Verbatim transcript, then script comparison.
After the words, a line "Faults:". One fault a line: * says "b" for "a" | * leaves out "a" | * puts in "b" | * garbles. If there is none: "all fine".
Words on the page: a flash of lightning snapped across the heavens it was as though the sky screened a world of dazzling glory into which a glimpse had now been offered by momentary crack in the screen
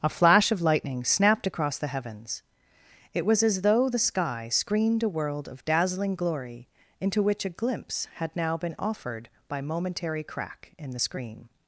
a flash of lightning snapped across the heavens it was as though the sky screened a world of dazzling glory into which a glimpse had now been offered by momentary crack in the screen
Faults:
all fine